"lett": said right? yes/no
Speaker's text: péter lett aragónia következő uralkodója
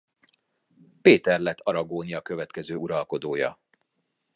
yes